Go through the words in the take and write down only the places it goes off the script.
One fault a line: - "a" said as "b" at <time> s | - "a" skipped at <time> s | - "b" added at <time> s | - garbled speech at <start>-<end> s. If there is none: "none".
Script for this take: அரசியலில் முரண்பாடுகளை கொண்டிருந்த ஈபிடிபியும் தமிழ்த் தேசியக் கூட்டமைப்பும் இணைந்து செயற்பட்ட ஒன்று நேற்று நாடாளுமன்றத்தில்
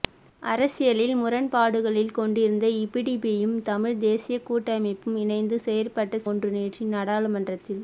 none